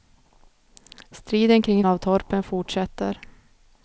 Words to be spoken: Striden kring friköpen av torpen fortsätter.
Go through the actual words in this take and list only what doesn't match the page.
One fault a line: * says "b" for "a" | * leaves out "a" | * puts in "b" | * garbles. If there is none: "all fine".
* leaves out "friköpen"